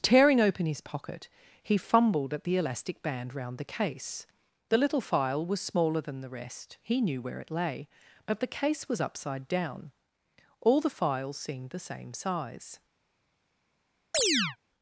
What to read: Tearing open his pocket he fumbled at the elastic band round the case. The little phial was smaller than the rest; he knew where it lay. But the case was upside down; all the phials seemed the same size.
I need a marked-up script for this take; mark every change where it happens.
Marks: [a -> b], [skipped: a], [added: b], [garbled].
Tearing open his pocket he fumbled at the elastic band round the case. The little phial was smaller than the rest; he knew where it lay. But the case was upside down; all the phials seemed the same size.